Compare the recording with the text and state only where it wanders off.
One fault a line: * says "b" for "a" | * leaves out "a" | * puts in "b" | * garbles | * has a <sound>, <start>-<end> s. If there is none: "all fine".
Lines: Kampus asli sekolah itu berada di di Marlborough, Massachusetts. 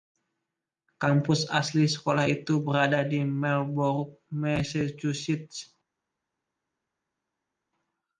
* leaves out "di"